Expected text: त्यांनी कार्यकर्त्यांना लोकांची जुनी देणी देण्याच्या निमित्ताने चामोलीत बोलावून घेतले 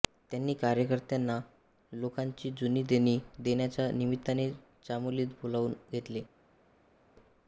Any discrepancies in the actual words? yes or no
no